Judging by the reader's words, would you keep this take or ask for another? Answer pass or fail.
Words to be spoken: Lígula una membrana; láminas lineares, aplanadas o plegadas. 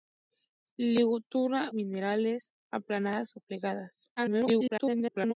fail